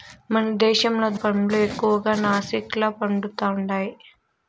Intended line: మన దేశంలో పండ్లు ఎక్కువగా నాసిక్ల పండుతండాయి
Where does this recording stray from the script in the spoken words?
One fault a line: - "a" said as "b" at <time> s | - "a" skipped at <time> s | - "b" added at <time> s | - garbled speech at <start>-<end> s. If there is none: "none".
none